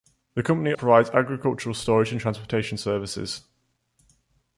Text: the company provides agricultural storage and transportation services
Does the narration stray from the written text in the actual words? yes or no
no